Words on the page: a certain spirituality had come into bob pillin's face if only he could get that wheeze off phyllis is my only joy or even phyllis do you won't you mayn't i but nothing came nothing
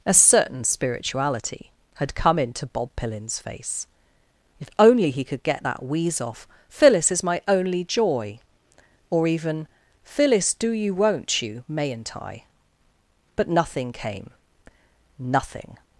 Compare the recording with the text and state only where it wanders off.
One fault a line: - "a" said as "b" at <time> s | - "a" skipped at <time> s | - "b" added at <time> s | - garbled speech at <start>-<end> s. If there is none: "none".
none